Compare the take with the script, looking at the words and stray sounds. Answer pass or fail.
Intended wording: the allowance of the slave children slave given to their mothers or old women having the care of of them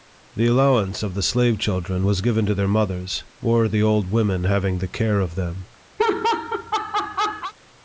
fail